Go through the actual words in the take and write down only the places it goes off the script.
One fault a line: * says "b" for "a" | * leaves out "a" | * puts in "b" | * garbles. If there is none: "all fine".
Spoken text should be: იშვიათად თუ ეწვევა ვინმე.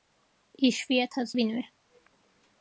* leaves out "თუ ეწვევა"